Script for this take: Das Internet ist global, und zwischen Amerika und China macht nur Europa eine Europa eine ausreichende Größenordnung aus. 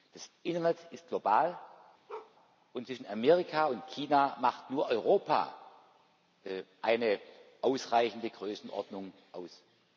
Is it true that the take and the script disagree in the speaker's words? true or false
true